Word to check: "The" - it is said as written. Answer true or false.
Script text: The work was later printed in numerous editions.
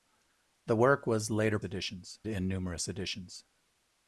true